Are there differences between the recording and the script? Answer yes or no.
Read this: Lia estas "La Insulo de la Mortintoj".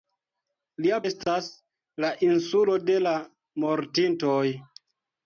no